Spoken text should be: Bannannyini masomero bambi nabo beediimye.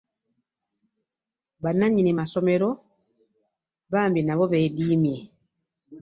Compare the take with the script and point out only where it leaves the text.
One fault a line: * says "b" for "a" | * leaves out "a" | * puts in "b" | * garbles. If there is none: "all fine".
all fine